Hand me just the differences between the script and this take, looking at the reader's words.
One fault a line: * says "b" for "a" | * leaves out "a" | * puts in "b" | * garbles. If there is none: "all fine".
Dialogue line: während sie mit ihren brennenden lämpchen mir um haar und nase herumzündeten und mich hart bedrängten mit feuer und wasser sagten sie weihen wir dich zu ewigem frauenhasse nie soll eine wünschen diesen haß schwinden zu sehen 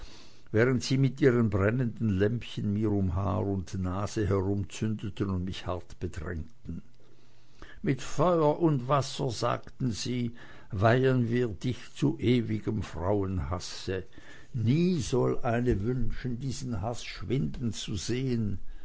all fine